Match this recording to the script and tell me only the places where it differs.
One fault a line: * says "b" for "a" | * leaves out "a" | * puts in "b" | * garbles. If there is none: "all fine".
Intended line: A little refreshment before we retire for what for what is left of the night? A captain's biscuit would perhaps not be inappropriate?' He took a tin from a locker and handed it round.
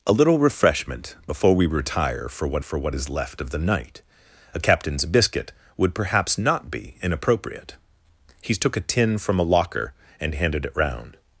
all fine